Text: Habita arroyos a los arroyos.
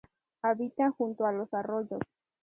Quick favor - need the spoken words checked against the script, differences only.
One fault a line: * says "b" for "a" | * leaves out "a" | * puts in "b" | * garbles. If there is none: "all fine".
* says "junto" for "arroyos"